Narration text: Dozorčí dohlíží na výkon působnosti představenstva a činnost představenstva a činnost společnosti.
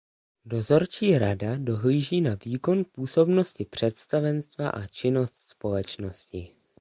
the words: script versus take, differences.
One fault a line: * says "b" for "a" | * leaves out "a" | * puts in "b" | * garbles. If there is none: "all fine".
* puts in "rada"
* leaves out "představenstva a činnost"